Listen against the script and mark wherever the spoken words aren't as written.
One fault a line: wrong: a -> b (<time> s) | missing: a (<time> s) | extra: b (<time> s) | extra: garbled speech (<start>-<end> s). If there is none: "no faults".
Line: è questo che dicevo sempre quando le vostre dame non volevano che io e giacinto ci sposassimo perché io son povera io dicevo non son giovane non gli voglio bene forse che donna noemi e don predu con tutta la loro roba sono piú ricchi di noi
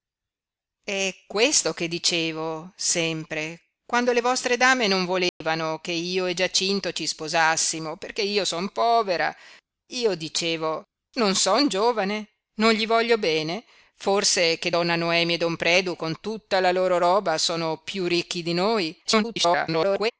extra: garbled speech (19.0-20.1 s)